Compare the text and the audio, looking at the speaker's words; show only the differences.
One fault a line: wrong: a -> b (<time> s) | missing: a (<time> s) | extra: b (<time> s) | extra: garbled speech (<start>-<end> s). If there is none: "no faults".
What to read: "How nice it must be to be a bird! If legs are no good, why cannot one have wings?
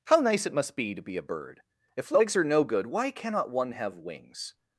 no faults